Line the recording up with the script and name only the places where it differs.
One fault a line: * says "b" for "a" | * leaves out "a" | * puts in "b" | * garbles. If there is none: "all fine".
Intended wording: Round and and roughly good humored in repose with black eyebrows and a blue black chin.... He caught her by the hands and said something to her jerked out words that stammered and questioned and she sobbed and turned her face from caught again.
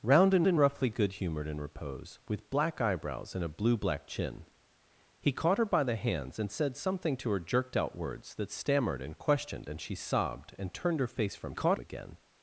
all fine